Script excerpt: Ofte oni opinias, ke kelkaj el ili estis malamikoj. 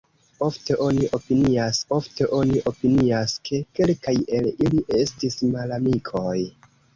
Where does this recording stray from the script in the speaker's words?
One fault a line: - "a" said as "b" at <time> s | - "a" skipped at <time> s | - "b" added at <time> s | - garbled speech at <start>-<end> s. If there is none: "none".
- "ofte oni opinias" added at 1.9 s